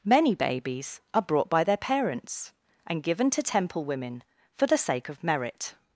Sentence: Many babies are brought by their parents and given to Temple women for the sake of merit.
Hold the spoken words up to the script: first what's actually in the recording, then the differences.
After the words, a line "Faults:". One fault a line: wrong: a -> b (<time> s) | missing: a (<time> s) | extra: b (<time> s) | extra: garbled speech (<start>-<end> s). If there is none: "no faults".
Many babies are brought by their parents and given to Temple women for the sake of merit.
Faults:
no faults